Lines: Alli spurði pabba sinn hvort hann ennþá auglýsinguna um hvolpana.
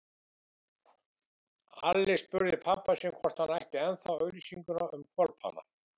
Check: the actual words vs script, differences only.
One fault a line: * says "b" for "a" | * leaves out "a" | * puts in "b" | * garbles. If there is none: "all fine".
* puts in "ætti"